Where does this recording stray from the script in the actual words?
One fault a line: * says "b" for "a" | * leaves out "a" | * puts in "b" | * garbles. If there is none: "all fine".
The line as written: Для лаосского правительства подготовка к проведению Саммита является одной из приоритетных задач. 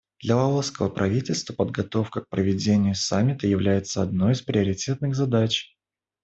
all fine